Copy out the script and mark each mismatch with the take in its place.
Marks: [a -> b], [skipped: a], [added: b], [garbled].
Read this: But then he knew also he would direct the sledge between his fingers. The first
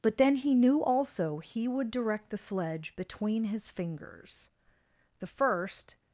But then he knew also he would direct the sledge between his fingers. The first